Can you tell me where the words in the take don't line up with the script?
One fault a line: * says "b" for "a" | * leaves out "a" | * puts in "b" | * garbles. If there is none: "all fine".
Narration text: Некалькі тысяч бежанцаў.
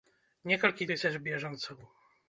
all fine